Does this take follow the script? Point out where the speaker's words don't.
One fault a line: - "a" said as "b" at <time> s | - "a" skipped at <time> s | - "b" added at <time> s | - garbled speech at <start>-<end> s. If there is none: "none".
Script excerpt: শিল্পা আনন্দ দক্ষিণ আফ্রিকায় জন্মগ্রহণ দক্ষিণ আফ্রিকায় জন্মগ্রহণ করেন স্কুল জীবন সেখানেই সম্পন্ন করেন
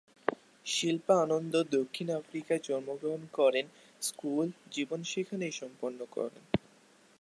- "দক্ষিণ আফ্রিকায় জন্মগ্রহণ" skipped at 3.2 s